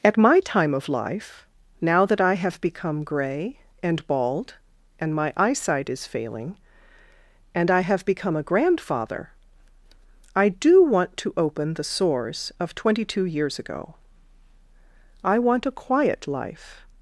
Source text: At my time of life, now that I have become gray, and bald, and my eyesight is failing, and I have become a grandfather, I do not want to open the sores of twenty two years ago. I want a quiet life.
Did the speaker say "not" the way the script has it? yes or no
no